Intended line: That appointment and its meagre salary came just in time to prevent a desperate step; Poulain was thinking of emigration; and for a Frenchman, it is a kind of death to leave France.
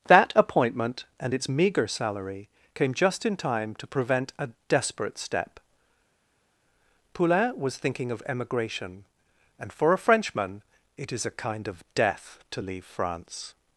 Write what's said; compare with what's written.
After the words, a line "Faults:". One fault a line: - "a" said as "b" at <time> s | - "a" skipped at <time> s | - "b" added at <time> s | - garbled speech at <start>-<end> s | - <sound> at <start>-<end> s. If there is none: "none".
That appointment and its meagre salary came just in time to prevent a desperate step; Poulain was thinking of emigration; and for a Frenchman, it is a kind of death to leave France.
Faults:
none